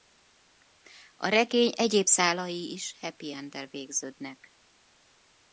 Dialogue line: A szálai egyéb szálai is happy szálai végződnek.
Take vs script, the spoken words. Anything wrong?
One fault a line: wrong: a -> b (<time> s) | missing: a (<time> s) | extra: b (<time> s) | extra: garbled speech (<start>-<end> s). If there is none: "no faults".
wrong: szálai -> regény (1.3 s)
wrong: szálai -> enddel (3.3 s)